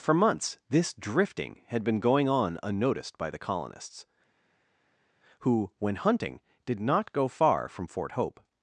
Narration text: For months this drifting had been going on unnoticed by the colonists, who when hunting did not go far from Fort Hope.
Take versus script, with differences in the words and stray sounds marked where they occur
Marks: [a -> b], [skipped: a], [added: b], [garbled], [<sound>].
For months this drifting had been going on unnoticed by the colonists, who when hunting did not go far from Fort Hope.